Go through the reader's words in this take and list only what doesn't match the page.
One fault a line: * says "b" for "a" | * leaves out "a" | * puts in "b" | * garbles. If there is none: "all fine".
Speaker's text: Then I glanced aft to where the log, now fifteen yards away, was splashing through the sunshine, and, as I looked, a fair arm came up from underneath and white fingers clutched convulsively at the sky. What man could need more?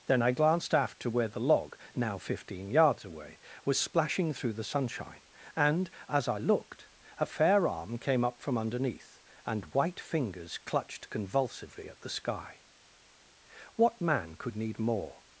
all fine